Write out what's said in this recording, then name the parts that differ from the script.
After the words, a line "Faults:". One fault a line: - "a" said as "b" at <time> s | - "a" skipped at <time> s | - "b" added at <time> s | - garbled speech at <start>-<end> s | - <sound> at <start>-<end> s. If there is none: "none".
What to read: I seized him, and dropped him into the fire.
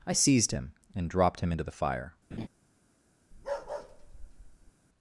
I seized him, and dropped him into the fire.
Faults:
- laugh at 2.3-2.5 s
- bark at 3.3-4.7 s